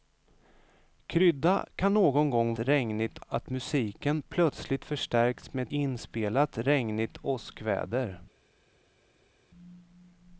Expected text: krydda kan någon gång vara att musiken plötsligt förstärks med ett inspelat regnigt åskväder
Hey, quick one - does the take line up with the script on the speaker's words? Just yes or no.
no